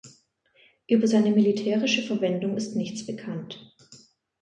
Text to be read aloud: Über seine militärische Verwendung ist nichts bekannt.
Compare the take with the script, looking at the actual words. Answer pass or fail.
pass